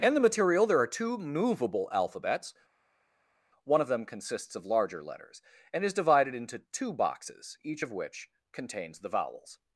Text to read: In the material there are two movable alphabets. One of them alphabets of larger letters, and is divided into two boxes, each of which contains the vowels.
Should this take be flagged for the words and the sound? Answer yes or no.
yes